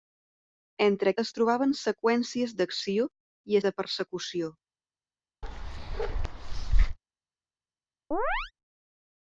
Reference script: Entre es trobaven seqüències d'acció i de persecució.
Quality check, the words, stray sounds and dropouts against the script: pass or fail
fail